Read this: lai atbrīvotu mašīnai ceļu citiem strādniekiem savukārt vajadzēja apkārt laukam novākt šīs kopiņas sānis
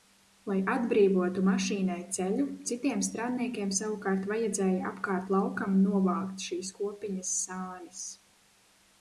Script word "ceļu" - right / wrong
right